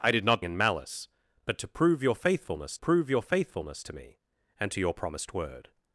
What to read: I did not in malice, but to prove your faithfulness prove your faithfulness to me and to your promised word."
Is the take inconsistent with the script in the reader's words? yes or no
no